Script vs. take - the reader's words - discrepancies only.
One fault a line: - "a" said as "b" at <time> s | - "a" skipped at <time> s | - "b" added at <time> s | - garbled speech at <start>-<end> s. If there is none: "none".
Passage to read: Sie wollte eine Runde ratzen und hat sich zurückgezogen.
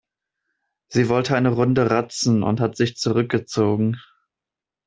none